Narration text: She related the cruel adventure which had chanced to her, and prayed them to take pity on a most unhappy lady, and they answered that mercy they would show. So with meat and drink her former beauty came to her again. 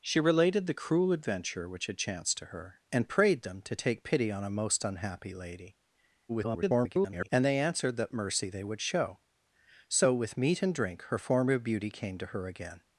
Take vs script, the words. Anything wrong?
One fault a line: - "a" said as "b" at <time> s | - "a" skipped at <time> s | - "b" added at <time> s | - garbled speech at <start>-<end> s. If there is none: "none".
- garbled speech at 6.3-7.3 s